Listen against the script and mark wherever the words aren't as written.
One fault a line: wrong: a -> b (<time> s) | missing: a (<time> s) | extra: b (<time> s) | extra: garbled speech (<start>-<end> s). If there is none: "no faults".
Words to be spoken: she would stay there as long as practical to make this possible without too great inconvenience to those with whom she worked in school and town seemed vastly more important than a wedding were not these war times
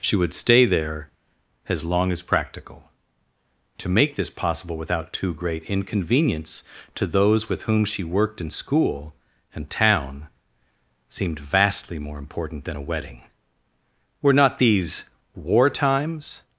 no faults